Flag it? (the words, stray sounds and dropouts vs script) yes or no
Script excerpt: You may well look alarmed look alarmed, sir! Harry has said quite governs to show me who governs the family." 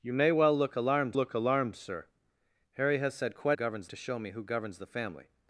no